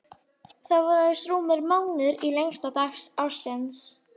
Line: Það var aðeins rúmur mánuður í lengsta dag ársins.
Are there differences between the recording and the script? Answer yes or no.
no